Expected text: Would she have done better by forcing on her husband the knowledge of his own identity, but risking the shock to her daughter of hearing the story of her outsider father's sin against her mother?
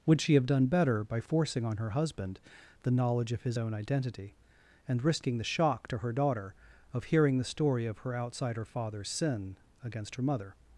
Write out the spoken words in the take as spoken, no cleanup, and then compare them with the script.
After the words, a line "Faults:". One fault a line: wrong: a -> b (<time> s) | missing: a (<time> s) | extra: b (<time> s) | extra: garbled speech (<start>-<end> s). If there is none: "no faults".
Would she have done better by forcing on her husband the knowledge of his own identity, and risking the shock to her daughter of hearing the story of her outsider father's sin against her mother?
Faults:
wrong: but -> and (4.9 s)